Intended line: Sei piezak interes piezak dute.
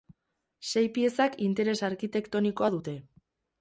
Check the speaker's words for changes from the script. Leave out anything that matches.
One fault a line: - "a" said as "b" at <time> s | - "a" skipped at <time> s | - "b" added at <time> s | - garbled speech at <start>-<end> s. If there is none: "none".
- "piezak" said as "arkitektonikoa" at 1.9 s